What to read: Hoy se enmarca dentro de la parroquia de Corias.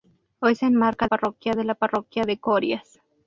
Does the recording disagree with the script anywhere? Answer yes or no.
yes